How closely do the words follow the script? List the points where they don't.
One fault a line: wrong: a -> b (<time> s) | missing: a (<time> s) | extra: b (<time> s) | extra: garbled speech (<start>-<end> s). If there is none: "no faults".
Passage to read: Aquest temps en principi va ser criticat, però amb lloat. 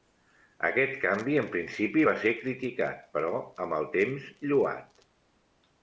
wrong: temps -> canvi (1.0 s)
extra: el temps (3.8 s)